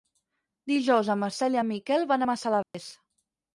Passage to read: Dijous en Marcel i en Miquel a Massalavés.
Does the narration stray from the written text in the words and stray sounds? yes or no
yes